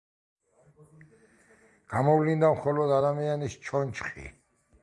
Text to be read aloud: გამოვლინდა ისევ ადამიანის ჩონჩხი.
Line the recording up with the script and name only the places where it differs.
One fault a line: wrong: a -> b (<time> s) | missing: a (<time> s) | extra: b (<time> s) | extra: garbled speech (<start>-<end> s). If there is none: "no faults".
wrong: ისევ -> მხოლოდ (2.6 s)